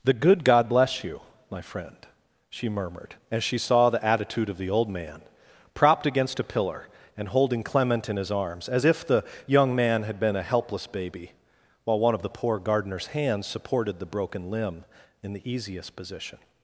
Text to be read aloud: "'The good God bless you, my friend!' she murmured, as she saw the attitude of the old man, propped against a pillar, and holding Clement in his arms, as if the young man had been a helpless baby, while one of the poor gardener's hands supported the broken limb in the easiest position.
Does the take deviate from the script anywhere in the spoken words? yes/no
no